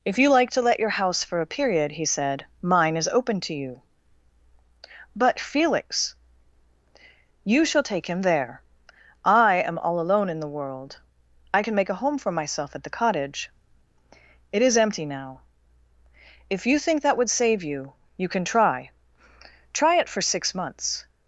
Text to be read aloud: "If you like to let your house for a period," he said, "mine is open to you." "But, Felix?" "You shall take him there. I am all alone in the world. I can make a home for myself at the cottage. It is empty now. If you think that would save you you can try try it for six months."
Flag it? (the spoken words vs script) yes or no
no